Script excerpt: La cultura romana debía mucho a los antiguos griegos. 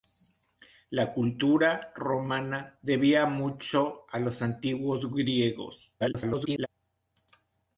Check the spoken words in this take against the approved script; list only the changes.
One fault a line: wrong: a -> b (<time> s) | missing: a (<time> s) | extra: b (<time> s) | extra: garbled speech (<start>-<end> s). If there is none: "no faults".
extra: garbled speech (6.0-6.7 s)